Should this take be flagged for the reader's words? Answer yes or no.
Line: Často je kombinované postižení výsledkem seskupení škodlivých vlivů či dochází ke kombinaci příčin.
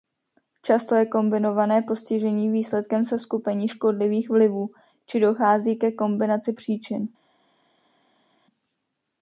no